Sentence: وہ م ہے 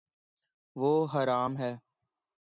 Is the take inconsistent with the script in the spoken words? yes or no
yes